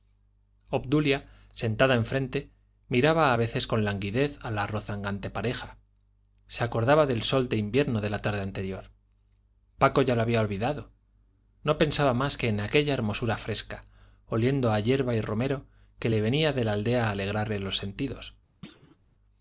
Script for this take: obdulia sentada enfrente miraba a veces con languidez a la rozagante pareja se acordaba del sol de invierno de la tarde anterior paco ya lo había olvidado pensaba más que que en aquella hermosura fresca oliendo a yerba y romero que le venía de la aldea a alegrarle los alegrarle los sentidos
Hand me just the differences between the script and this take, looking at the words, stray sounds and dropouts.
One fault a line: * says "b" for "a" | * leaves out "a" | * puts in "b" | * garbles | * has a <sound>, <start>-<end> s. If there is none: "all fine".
* puts in "no"
* leaves out "que"
* leaves out "alegrarle los"
* has a thud, 18.6-19.0 s